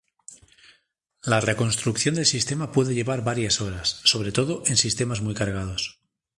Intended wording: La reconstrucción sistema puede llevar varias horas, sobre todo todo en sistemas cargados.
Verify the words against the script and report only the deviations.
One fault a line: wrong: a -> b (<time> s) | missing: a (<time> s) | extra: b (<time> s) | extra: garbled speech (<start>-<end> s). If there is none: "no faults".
extra: del (2.1 s)
missing: todo (4.6 s)
extra: muy (5.2 s)